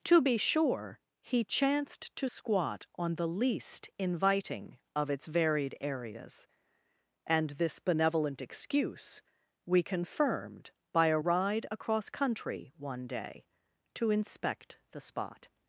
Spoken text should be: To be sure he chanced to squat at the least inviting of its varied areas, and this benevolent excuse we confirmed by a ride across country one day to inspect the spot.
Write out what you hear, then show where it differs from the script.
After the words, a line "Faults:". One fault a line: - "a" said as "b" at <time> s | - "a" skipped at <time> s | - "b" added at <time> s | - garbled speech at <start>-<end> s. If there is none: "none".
To be sure he chanced to squat on the least inviting of its varied areas, and this benevolent excuse we confirmed by a ride across country one day to inspect the spot.
Faults:
- "at" said as "on" at 2.9 s